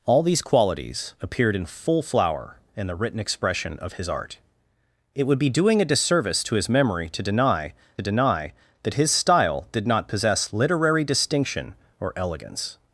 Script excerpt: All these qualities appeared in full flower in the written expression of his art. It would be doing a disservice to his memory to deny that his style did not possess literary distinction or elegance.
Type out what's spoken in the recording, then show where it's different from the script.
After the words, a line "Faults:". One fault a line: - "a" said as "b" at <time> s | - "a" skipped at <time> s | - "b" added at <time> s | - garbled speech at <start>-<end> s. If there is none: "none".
All these qualities appeared in full flower in the written expression of his art. It would be doing a disservice to his memory to deny deny that his style did not possess literary distinction or elegance.
Faults:
- "deny" added at 8.0 s